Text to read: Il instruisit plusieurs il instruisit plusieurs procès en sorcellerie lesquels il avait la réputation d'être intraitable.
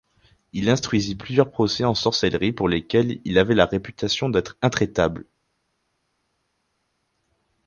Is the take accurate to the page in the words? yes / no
no